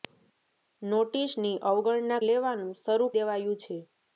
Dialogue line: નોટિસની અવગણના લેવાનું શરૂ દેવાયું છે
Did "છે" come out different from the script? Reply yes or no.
no